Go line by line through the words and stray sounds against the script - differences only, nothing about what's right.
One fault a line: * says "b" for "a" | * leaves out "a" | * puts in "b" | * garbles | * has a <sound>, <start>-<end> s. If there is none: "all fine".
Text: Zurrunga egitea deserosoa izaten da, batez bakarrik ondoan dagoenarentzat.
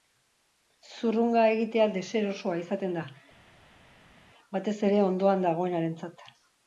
* says "ere" for "bakarrik"